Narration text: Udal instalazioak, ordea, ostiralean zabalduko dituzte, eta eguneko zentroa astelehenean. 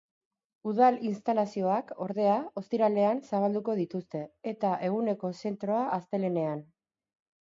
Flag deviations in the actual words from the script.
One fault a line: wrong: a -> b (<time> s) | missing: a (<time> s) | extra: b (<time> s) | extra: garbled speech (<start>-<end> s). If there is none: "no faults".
no faults